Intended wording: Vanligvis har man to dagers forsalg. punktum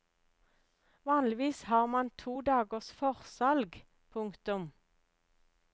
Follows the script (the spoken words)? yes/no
yes